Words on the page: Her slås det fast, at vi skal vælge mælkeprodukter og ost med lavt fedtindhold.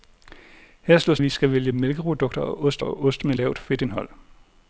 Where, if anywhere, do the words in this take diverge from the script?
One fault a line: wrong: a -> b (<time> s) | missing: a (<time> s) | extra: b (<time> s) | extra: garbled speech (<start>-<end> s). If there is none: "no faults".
missing: det fast at (1.2 s)
extra: og ost (2.8 s)